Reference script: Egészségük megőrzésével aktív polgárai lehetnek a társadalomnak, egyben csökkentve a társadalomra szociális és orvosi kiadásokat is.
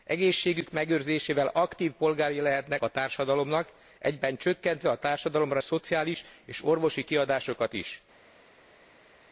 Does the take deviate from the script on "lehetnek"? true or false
false